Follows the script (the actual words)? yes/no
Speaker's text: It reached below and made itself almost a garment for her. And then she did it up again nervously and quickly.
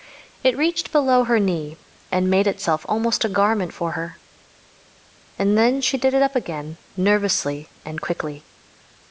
no